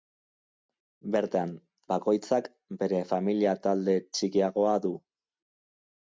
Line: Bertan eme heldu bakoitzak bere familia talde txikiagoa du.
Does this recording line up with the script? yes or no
no